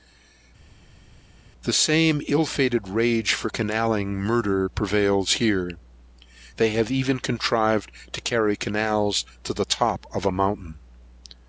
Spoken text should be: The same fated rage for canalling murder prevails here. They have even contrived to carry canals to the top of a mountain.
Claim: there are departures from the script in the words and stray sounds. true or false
true